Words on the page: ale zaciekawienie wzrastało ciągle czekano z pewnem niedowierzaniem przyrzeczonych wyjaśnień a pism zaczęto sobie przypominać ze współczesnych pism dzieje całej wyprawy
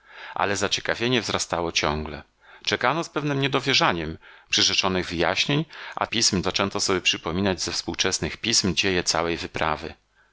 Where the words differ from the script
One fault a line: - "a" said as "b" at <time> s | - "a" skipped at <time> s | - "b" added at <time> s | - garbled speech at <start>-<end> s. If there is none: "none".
none